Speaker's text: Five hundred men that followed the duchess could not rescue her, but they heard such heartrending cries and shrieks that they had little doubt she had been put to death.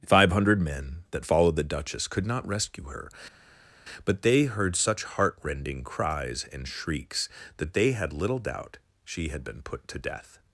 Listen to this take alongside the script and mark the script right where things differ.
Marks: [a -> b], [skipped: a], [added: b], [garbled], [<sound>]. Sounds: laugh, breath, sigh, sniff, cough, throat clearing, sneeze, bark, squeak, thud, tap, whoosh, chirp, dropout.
Five hundred men that followed the duchess could not rescue her, but they heard such heartrending cries and shrieks that they had little doubt she had been put to death.